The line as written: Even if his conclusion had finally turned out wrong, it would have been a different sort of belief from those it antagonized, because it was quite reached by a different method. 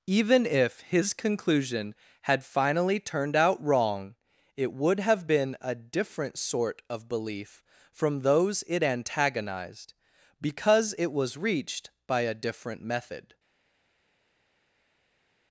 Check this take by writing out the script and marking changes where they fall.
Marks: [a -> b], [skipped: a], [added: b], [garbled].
Even if his conclusion had finally turned out wrong, it would have been a different sort of belief from those it antagonized, because it was [skipped: quite] reached by a different method.